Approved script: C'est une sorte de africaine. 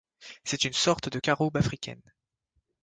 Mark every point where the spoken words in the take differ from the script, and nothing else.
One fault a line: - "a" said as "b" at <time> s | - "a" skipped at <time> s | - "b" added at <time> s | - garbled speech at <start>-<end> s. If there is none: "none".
- "caroube" added at 1.1 s